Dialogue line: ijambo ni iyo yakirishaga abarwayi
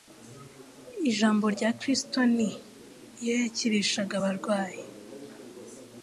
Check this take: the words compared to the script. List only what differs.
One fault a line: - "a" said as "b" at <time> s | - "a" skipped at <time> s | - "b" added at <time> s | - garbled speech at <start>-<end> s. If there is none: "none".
- "rya kristo" added at 1.5 s